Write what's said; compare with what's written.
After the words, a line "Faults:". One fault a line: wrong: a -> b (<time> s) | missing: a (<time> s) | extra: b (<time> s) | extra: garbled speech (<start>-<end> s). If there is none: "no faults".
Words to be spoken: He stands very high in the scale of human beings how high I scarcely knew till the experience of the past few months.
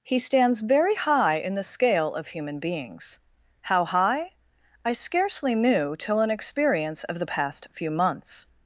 He stands very high in the scale of human beings how high I scarcely knew till an experience of the past few months.
Faults:
wrong: the -> an (6.2 s)